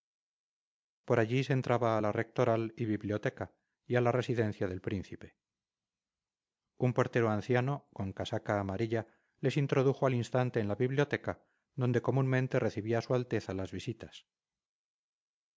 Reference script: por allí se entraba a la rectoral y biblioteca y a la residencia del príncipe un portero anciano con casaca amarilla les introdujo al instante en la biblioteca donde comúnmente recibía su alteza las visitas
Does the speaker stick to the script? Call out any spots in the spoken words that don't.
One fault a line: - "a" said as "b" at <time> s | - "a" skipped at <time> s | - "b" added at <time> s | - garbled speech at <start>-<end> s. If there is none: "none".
none